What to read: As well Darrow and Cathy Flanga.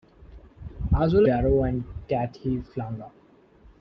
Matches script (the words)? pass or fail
pass